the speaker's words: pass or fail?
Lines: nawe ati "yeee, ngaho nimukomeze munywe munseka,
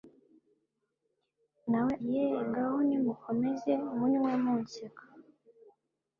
fail